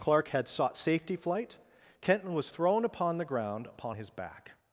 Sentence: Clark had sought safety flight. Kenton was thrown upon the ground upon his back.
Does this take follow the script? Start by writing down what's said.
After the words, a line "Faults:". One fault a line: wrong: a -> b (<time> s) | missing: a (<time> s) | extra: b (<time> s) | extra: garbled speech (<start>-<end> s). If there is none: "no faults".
Clark had sought safety flight. Kenton was thrown upon the ground upon his back.
Faults:
no faults